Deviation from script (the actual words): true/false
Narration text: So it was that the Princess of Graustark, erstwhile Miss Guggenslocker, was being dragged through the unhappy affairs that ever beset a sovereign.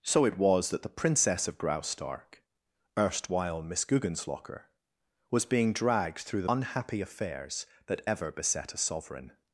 false